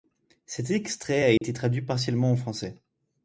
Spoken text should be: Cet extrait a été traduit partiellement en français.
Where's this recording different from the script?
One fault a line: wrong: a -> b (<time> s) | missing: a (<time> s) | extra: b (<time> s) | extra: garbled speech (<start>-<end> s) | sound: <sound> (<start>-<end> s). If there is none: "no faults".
sound: dropout (1.4-1.4 s)